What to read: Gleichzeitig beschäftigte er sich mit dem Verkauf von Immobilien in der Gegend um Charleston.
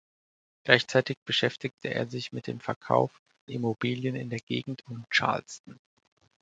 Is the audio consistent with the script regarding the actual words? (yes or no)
no